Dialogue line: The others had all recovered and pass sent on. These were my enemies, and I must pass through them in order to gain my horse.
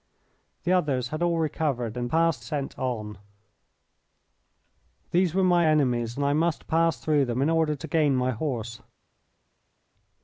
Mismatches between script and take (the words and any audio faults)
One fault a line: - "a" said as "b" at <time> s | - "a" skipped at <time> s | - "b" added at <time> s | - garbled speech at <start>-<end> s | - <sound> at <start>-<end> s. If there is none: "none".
none